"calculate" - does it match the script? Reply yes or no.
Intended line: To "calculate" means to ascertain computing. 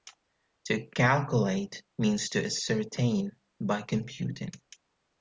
yes